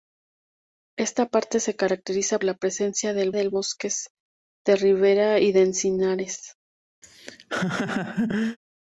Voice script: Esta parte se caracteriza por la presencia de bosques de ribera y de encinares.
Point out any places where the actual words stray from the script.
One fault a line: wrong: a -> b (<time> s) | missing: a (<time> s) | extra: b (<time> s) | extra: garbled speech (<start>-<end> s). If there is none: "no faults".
missing: por (2.4 s)
extra: de (3.3 s)